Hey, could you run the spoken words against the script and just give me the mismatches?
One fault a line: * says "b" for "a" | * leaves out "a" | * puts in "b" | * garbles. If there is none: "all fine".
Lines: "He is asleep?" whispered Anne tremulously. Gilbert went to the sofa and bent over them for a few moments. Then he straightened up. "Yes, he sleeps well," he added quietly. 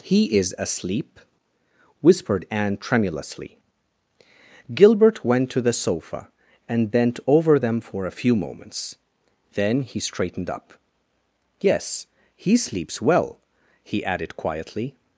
all fine